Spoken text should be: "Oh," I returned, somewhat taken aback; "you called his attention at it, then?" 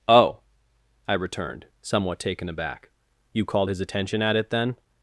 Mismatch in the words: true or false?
false